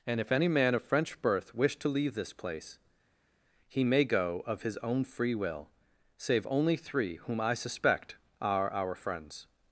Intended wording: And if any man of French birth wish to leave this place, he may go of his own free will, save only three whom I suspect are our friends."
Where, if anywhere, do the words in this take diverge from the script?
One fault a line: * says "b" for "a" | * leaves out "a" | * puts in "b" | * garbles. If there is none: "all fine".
all fine